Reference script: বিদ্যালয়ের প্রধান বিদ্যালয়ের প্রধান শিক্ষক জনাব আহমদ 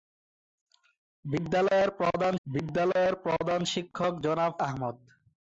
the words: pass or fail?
pass